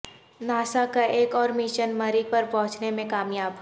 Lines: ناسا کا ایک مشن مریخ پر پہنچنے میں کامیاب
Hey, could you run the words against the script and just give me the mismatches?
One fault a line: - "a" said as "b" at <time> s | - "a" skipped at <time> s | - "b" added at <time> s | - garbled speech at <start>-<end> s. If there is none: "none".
- "اور" added at 1.4 s